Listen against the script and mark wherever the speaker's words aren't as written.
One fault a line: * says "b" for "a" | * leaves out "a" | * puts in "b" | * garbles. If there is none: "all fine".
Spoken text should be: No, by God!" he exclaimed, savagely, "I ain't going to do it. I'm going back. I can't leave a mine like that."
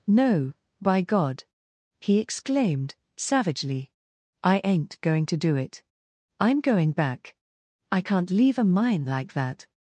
all fine